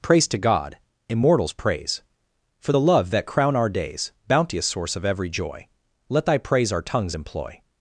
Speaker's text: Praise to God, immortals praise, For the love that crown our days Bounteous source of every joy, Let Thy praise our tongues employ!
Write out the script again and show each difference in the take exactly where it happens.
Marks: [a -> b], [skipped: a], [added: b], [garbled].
Praise to God, immortals praise, For the love that crown our days Bounteous source of every joy, Let Thy praise our tongues employ!